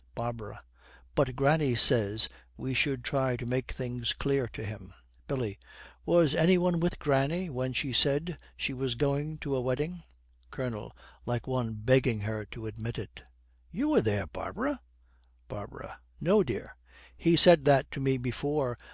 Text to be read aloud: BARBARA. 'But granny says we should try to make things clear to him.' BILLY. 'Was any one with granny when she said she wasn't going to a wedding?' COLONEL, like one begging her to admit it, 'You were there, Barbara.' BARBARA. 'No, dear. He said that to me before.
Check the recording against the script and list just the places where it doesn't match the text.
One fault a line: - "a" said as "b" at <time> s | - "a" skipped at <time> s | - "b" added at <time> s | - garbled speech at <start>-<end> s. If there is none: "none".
- "wasn't" said as "was" at 8.7 s